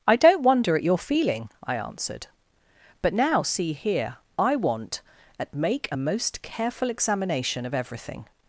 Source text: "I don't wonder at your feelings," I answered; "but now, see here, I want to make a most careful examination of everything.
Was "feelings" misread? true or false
true